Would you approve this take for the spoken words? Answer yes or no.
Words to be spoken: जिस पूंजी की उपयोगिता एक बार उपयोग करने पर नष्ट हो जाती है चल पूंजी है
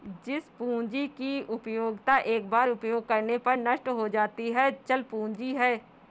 yes